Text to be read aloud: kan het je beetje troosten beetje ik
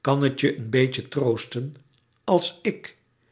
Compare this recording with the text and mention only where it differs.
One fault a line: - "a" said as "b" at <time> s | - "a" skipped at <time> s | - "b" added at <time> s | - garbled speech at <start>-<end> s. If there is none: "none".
- "een" added at 0.6 s
- "beetje" said as "als" at 2.2 s